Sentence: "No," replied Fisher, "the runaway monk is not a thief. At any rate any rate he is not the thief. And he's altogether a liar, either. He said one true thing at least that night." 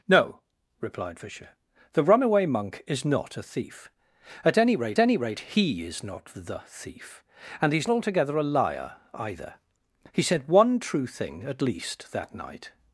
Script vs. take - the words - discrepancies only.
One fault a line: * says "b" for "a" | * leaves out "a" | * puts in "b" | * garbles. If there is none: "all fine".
all fine